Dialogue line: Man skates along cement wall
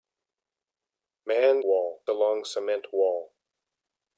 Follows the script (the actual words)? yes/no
no